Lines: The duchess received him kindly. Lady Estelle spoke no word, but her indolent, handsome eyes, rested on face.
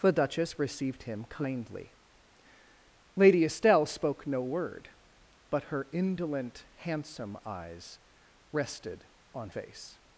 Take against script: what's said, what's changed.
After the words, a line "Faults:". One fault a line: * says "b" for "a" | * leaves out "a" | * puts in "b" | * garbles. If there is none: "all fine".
The duchess received him kindly. Lady Estelle spoke no word, but her indolent, handsome eyes, rested on face.
Faults:
all fine